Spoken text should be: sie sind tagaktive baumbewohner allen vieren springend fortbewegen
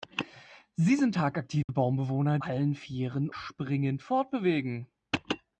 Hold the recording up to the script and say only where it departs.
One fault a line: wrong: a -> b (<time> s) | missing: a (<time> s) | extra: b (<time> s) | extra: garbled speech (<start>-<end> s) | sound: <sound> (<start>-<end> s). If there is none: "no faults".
sound: dropout (1.6-1.7 s)